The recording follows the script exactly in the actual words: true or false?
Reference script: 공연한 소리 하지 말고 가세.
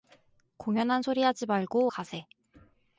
true